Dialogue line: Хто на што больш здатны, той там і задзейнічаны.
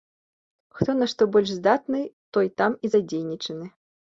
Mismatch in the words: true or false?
false